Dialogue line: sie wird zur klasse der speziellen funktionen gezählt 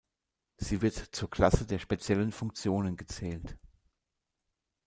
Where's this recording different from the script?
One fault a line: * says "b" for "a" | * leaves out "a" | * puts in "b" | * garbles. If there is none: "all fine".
all fine